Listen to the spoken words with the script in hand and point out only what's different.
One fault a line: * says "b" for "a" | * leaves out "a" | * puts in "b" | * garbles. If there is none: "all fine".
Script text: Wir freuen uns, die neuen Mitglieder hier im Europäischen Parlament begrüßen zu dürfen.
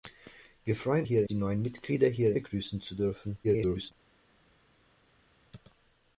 * says "hier" for "uns"
* leaves out "im Europäischen Parlament"
* garbles